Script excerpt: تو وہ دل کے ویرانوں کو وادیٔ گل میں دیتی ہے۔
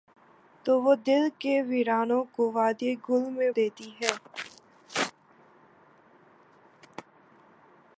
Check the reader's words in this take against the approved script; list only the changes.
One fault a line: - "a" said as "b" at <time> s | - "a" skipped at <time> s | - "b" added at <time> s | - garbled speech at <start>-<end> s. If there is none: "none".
none